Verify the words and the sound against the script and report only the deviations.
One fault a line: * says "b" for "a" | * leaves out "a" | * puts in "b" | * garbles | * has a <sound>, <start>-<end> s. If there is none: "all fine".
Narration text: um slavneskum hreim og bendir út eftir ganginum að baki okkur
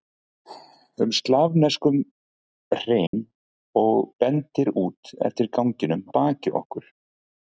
* has a dropout, 3.1-3.1 s
* leaves out "að"